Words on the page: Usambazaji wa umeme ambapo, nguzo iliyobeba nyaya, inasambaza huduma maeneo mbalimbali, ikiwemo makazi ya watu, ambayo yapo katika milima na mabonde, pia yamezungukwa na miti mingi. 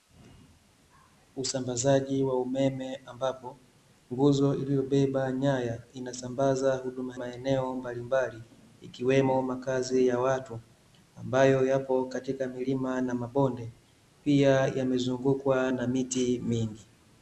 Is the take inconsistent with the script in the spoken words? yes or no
no